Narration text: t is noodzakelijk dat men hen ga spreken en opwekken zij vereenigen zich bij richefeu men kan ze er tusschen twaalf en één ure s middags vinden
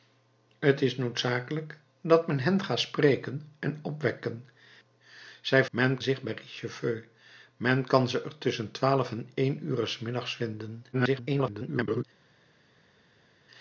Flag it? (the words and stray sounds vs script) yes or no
yes